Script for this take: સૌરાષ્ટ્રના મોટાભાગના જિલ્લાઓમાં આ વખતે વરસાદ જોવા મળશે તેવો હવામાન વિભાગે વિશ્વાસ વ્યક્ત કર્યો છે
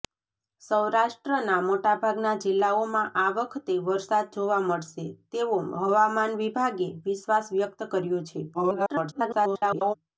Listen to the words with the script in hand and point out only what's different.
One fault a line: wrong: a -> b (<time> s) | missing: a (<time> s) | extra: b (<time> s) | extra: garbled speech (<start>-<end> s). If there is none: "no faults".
extra: garbled speech (8.5-9.9 s)